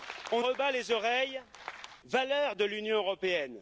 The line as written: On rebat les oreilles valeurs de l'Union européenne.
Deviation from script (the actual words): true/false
false